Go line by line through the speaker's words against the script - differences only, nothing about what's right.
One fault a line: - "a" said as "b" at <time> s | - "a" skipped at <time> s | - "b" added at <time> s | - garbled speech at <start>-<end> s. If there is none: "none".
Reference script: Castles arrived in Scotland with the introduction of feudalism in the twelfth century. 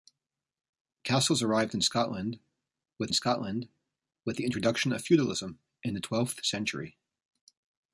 - "Scotland with" added at 3.1 s